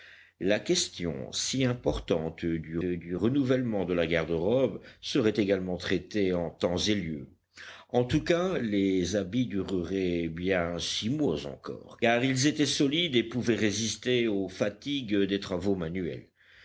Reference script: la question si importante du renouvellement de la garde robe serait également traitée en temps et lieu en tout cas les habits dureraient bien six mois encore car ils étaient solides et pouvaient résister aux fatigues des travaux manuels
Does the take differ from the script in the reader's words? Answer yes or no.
yes